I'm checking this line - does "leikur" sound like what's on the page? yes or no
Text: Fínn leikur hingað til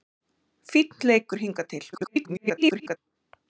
yes